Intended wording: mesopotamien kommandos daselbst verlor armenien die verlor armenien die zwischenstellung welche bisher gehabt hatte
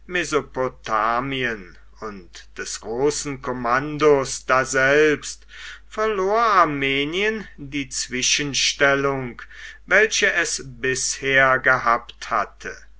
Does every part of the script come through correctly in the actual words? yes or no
no